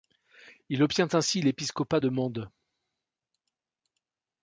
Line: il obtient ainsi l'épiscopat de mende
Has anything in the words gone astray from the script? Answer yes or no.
no